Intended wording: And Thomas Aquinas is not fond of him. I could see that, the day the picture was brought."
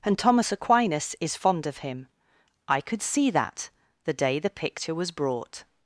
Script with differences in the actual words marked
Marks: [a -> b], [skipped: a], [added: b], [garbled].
And Thomas Aquinas is [skipped: not] fond of him. I could see that, the day the picture was brought."